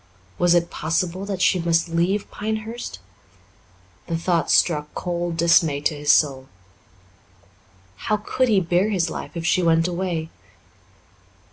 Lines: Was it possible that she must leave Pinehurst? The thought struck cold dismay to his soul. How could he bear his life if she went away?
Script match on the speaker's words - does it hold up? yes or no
yes